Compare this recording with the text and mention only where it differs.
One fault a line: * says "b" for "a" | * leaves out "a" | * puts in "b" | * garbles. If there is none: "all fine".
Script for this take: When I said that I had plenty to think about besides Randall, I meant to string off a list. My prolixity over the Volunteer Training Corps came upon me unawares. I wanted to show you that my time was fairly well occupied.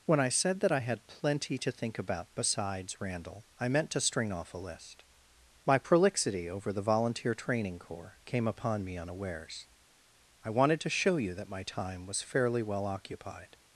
all fine